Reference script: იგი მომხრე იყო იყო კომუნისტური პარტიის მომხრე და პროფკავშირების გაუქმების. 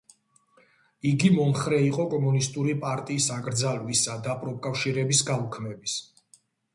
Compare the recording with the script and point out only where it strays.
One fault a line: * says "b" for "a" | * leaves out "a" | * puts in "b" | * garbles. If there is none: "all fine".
* leaves out "იყო"
* says "აკრძალვისა" for "მომხრე"